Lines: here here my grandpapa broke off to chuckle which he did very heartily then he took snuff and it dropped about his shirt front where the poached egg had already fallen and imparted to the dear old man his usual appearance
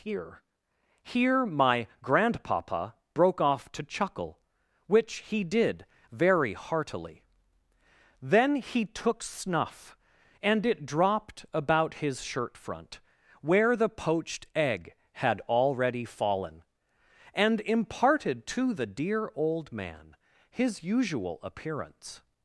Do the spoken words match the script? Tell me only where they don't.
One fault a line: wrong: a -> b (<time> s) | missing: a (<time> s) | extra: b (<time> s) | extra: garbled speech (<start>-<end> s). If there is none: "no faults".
no faults